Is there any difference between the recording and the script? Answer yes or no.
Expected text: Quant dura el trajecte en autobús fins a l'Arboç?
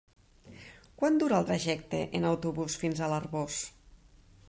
no